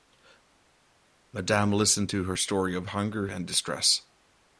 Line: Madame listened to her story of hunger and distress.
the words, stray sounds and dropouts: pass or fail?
pass